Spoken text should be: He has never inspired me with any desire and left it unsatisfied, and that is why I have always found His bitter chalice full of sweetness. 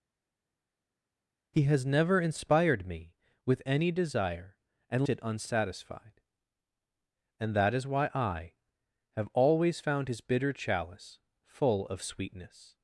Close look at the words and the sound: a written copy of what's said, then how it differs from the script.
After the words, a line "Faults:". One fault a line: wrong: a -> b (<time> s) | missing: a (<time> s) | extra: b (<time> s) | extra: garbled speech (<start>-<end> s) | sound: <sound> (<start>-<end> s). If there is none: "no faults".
He has never inspired me with any desire and it unsatisfied, and that is why I have always found His bitter chalice full of sweetness.
Faults:
missing: left (5.1 s)